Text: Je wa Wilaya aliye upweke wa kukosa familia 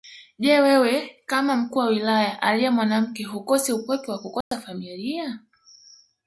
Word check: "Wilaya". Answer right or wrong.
right